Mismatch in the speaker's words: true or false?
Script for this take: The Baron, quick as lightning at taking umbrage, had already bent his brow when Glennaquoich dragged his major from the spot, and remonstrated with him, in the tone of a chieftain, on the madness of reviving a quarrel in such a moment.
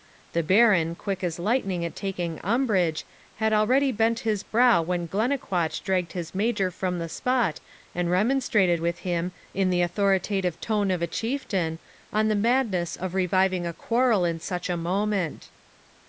true